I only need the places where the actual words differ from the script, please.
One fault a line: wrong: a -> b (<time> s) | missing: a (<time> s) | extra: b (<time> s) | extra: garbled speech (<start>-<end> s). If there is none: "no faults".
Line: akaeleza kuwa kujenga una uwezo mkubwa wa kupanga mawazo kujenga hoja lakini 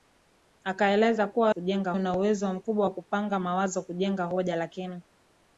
no faults